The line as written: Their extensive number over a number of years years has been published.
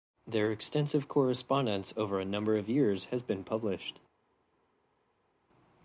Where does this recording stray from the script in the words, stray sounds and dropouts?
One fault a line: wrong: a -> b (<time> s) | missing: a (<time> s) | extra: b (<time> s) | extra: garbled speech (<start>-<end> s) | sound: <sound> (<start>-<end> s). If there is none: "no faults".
wrong: number -> correspondence (1.1 s)
missing: years (3.0 s)